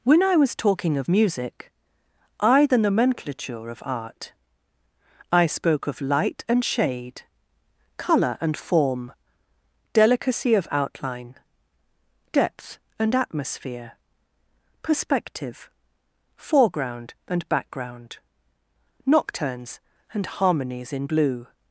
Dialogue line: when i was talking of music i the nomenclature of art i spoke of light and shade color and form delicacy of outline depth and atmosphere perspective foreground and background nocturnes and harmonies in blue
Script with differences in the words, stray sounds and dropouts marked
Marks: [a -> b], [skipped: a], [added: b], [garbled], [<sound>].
when i was talking of music i the nomenclature of art i spoke of light and shade color and form delicacy of outline depth and atmosphere perspective foreground and background nocturnes and harmonies in blue